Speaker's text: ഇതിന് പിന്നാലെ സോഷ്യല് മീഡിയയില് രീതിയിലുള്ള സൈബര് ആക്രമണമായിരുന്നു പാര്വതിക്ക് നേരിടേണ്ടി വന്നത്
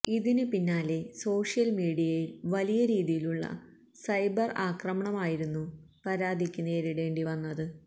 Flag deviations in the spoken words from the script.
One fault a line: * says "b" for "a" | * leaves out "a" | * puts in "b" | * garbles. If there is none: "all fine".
* puts in "വലിയ"